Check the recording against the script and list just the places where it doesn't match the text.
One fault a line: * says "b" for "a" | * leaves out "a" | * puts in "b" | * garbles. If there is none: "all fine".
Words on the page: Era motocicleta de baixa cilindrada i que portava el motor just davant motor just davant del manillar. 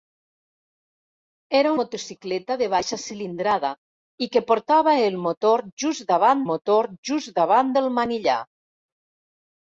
all fine